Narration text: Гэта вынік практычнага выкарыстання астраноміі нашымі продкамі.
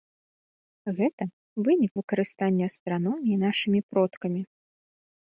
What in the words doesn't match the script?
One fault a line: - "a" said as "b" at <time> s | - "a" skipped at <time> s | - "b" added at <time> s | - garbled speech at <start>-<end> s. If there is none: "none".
- "практычнага" skipped at 1.9 s